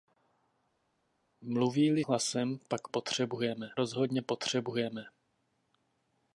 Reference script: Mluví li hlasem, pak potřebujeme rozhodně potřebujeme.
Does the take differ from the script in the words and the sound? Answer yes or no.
no